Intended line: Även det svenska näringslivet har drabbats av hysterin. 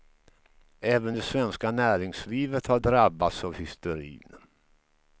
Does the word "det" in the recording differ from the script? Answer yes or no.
no